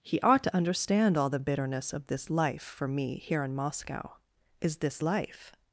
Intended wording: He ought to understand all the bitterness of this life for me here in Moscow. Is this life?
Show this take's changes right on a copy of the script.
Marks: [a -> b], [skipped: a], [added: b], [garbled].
He ought to understand all the bitterness of this life for me here in Moscow. Is this life?